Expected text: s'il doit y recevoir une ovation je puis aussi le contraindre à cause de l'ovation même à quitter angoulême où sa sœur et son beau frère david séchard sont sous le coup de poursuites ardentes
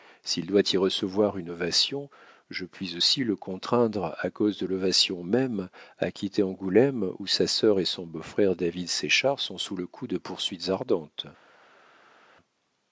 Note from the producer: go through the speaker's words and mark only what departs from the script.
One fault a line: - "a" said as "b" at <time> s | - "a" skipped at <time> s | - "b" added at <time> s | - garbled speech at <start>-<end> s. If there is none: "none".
none